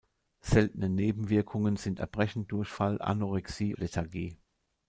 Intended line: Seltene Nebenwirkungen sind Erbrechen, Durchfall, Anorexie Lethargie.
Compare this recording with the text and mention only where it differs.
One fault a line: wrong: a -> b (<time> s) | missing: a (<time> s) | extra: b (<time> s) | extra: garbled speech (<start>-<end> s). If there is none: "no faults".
no faults